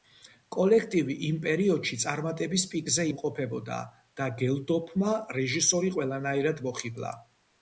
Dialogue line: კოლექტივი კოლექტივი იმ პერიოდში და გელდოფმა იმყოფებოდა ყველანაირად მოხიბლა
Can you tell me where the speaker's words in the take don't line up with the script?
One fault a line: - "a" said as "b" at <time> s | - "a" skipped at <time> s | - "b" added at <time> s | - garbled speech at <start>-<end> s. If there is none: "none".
- "კოლექტივი" skipped at 1.2 s
- "წარმატების პიკზე იმყოფებოდა" added at 2.0 s
- "იმყოფებოდა" said as "რეჟისორი" at 5.4 s